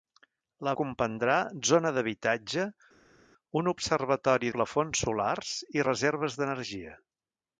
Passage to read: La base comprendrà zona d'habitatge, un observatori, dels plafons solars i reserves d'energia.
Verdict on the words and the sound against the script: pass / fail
fail